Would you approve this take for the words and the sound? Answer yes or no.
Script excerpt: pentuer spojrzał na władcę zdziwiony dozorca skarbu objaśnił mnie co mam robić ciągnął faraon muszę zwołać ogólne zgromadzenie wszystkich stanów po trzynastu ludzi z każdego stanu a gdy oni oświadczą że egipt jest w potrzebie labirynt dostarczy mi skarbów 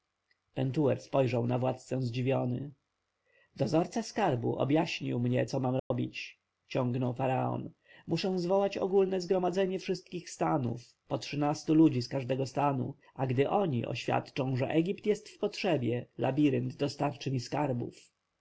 no